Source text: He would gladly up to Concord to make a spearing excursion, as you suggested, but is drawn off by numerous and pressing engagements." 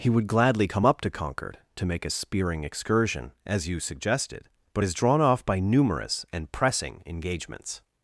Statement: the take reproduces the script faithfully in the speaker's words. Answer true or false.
false